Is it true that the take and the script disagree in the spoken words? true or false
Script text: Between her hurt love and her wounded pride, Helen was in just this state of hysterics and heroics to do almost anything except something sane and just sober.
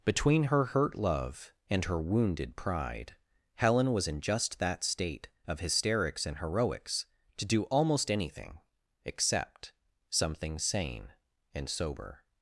true